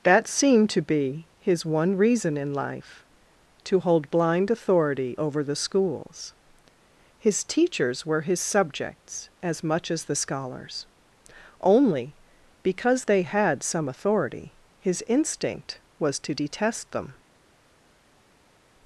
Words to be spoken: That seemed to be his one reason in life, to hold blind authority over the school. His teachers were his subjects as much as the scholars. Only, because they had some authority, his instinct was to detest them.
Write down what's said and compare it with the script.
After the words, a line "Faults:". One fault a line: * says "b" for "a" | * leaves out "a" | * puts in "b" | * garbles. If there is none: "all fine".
That seemed to be his one reason in life, to hold blind authority over the schools. His teachers were his subjects as much as the scholars. Only, because they had some authority, his instinct was to detest them.
Faults:
* says "schools" for "school"